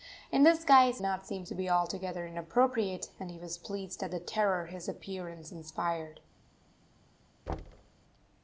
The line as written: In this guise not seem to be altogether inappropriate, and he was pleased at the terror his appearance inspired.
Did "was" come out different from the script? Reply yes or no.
no